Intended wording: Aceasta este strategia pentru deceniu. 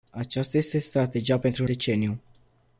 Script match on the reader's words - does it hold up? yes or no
yes